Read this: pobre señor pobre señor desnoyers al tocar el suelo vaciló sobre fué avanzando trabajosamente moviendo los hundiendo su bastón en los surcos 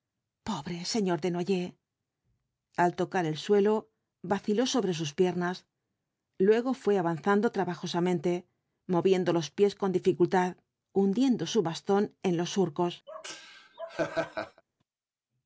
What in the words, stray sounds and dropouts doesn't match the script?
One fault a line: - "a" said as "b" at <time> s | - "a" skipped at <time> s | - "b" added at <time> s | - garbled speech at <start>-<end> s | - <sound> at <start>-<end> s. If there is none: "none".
- "pobre señor" skipped at 1.2 s
- "sus piernas luego" added at 5.0 s
- "pies con dificultad" added at 9.6 s
- laugh at 13.1-14.6 s